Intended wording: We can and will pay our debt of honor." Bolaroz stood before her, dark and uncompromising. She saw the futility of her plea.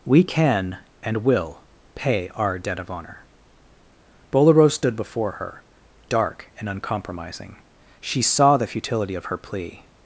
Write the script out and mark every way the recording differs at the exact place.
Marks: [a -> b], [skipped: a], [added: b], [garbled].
We can and will pay our debt of honor." Bolaroz stood before her, dark and uncompromising. She saw the futility of her plea.